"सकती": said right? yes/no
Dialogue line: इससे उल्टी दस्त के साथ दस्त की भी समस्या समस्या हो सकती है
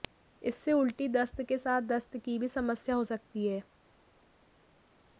yes